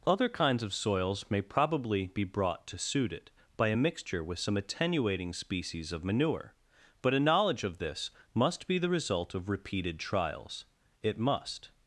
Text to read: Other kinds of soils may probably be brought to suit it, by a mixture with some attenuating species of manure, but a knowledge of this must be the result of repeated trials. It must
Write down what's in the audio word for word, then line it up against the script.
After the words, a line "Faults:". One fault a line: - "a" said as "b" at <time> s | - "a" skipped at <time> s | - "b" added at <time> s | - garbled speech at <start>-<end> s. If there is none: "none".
Other kinds of soils may probably be brought to suit it, by a mixture with some attenuating species of manure, but a knowledge of this must be the result of repeated trials. It must
Faults:
none